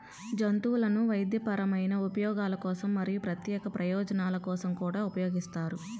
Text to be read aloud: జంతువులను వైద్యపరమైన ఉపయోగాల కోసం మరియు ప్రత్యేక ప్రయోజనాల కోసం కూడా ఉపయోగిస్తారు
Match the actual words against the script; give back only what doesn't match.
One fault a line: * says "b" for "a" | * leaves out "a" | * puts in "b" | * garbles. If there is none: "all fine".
all fine